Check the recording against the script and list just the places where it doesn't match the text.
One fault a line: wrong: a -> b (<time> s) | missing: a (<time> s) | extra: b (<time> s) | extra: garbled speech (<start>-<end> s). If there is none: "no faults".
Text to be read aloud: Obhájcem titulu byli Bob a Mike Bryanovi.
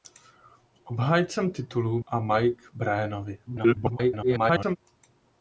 missing: byli Bob (2.0 s)
extra: garbled speech (3.5-4.8 s)